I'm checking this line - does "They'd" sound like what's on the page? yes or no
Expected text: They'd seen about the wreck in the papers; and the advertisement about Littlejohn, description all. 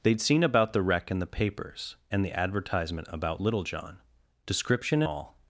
yes